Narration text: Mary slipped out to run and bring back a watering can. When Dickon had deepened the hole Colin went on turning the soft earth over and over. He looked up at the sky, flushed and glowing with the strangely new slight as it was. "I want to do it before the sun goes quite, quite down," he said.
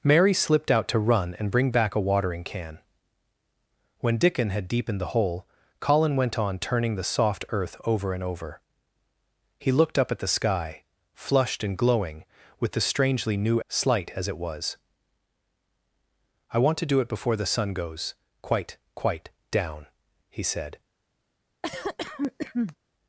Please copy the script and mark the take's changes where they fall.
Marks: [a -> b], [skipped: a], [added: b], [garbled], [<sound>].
Mary slipped out to run and bring back a watering can. When Dickon had deepened the hole Colin went on turning the soft earth over and over. He looked up at the sky, flushed and glowing with the strangely new slight as it was. "I want to do it before the sun goes quite, quite down," he said. [cough]